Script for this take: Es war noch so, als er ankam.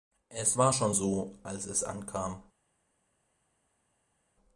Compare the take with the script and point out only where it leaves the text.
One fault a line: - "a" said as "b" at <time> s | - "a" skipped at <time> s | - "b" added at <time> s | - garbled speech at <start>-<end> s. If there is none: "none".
- "noch" said as "schon" at 0.7 s
- "er" said as "es" at 1.7 s